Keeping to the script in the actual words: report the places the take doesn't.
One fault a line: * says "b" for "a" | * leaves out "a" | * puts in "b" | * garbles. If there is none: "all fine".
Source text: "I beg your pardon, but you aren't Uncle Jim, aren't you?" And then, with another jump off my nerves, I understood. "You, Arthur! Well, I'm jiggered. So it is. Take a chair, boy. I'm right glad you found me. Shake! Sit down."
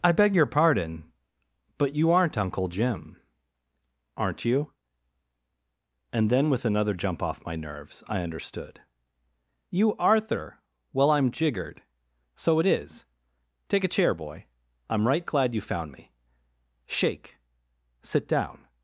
all fine